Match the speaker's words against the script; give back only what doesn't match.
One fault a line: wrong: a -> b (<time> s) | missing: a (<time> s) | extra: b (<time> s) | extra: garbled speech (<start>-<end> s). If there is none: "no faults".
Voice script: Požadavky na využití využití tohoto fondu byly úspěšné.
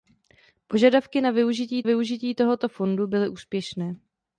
no faults